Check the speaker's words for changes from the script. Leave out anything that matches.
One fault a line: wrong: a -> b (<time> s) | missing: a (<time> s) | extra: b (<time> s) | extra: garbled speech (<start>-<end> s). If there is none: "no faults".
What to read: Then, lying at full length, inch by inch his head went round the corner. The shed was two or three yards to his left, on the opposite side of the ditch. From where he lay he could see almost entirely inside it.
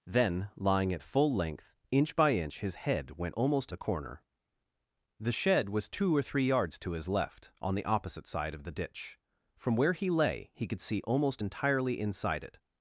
wrong: round -> almost (3.3 s)